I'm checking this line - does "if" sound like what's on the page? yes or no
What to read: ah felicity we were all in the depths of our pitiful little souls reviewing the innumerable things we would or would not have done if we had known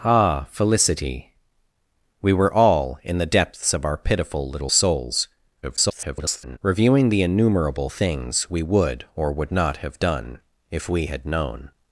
yes